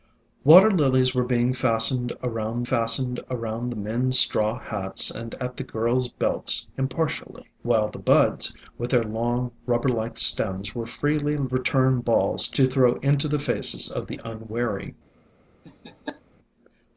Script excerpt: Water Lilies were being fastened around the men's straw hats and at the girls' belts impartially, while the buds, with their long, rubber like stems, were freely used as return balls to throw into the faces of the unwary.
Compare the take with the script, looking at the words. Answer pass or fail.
fail